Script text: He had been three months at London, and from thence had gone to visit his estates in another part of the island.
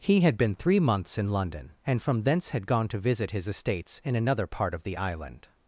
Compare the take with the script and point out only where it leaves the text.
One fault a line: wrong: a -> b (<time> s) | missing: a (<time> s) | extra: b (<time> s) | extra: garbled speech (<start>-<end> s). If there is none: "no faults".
wrong: at -> in (1.2 s)